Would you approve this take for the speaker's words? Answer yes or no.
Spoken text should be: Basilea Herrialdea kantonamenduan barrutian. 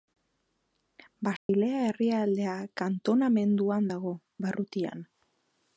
no